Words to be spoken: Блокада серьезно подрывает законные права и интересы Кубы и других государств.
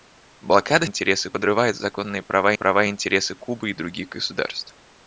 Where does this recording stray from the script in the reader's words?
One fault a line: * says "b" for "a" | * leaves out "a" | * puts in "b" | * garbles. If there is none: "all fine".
* says "интересы" for "серьезно"
* puts in "права"